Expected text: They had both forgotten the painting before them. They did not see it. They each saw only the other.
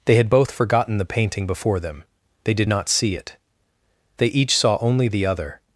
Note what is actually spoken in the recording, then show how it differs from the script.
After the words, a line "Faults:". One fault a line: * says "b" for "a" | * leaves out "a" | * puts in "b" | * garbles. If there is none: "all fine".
They had both forgotten the painting before them. They did not see it. They each saw only the other.
Faults:
all fine